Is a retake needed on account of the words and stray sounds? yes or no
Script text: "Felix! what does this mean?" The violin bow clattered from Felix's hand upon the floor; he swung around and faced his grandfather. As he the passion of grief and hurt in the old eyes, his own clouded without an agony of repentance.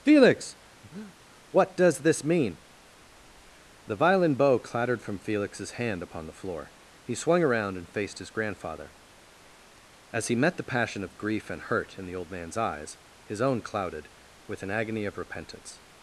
yes